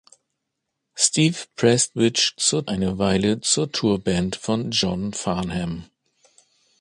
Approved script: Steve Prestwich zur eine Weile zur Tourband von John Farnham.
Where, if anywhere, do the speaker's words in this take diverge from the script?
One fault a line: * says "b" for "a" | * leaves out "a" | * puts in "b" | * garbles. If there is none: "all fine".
all fine